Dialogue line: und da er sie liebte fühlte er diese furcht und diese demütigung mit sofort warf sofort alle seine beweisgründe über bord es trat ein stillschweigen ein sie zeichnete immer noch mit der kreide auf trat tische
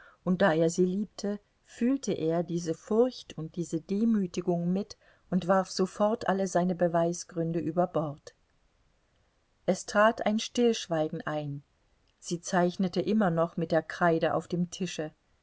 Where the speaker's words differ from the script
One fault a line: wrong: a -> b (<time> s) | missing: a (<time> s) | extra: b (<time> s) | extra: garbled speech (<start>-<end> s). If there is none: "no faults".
wrong: sofort -> und (5.3 s)
wrong: trat -> dem (14.5 s)